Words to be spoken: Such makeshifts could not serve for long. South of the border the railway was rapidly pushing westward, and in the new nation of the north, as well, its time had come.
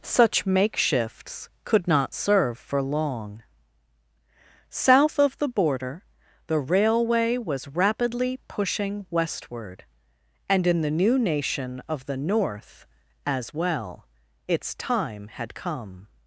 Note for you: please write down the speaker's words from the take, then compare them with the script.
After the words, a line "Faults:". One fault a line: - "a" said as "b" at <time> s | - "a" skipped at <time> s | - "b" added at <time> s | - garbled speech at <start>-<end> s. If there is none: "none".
Such makeshifts could not serve for long. South of the border the railway was rapidly pushing westward, and in the new nation of the north, as well, its time had come.
Faults:
none